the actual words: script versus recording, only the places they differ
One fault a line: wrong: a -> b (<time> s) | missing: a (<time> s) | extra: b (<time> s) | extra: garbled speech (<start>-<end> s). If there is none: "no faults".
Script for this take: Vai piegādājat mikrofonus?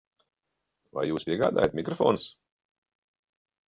extra: jūs (1.1 s)